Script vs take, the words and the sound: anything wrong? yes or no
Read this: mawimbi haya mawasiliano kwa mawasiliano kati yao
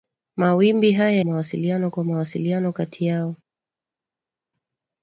no